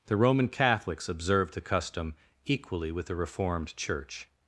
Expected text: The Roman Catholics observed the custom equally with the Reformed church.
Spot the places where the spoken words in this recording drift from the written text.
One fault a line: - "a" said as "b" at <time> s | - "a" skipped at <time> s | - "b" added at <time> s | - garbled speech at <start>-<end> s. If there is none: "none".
none